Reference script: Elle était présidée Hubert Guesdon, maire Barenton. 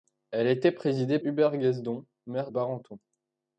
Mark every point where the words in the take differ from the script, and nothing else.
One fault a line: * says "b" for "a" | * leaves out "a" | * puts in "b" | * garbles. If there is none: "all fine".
all fine